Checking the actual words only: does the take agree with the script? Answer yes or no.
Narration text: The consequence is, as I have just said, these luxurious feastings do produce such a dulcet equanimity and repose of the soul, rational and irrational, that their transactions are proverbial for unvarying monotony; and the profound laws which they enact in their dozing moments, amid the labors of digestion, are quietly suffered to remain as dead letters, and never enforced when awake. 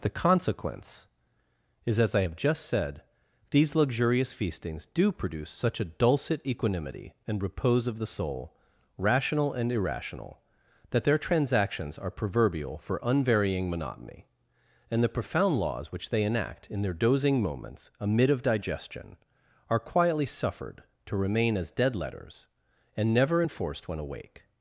no